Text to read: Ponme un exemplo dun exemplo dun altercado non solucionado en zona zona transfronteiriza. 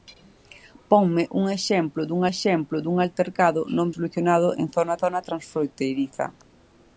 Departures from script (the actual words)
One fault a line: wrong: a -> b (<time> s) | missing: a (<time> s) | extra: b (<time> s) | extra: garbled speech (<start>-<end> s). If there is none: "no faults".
no faults